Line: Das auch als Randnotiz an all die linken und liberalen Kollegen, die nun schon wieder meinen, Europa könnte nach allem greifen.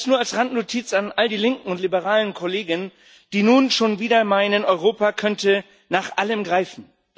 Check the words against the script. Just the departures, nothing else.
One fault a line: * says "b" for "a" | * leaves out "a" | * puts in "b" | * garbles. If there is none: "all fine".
* says "nur" for "auch"